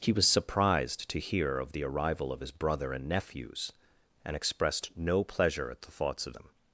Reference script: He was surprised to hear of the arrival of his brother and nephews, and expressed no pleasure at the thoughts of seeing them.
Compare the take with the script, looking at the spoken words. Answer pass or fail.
fail